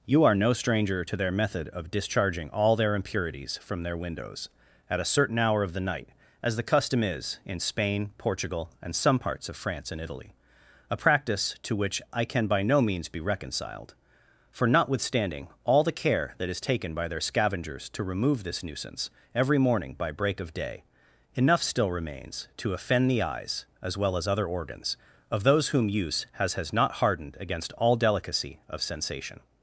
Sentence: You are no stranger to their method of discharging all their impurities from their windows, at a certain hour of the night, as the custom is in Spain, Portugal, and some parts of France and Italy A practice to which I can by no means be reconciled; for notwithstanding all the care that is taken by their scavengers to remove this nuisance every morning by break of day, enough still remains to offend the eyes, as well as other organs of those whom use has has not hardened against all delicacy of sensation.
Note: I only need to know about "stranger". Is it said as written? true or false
true